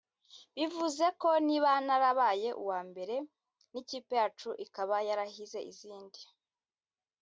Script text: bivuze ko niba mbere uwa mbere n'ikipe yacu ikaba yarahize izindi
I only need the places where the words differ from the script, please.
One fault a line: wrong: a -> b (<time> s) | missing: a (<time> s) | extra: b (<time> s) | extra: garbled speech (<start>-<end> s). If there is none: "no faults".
wrong: mbere -> narabaye (1.9 s)